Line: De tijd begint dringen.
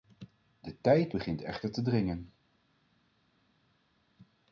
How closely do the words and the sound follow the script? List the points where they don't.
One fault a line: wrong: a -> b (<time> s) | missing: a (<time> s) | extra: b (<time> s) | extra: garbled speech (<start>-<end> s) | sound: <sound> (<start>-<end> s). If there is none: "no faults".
extra: echter te (1.4 s)